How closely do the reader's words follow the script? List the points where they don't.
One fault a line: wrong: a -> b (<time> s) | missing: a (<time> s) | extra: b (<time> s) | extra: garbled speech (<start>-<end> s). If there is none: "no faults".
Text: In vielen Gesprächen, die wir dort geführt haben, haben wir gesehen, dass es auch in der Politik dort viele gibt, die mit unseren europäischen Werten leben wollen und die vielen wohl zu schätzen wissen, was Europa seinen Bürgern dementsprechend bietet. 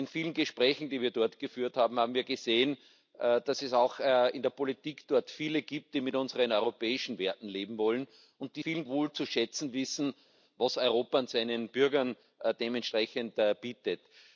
no faults